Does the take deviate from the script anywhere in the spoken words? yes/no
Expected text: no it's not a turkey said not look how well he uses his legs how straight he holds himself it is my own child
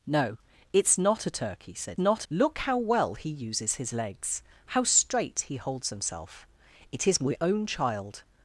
no